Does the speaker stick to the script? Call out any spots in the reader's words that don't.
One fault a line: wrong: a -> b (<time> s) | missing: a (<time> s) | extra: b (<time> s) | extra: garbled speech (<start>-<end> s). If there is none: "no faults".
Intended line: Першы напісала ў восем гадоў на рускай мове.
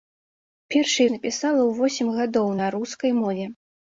no faults